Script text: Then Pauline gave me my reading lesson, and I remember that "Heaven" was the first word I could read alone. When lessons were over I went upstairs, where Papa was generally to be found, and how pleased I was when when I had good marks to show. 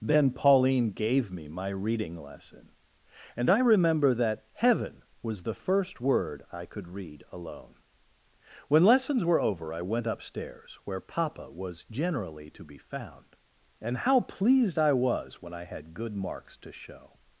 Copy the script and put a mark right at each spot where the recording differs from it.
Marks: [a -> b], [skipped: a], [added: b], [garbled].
Then Pauline gave me my reading lesson, and I remember that "Heaven" was the first word I could read alone. When lessons were over I went upstairs, where Papa was generally to be found, and how pleased I was when [skipped: when] I had good marks to show.